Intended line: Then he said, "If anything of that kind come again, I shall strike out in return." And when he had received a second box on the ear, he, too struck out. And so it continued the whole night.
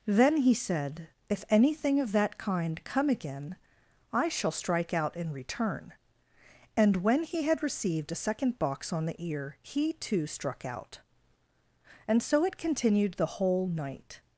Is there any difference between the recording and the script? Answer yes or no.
no